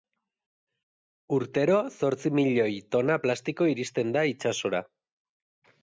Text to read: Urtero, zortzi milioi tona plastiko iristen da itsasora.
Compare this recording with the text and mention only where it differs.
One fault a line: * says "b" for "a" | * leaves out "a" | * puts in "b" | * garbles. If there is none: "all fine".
all fine